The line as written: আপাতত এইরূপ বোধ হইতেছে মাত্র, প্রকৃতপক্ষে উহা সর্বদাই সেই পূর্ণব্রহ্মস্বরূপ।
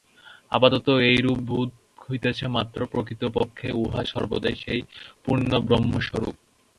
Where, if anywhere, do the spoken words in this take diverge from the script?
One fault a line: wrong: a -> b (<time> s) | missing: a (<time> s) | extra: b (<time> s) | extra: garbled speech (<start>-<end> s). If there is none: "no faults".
no faults